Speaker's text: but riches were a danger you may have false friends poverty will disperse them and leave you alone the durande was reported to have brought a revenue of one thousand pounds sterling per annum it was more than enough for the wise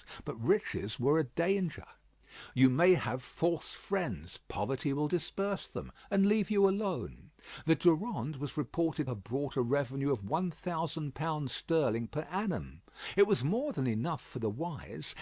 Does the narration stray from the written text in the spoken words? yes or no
yes